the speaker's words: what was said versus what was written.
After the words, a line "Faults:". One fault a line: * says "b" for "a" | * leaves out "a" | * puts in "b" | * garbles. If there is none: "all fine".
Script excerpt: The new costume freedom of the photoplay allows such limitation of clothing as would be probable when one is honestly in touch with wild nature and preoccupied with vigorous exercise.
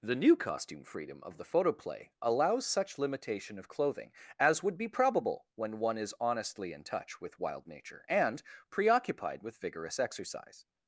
The new costume freedom of the photoplay allows such limitation of clothing as would be probable when one is honestly in touch with wild nature and preoccupied with vigorous exercise.
Faults:
all fine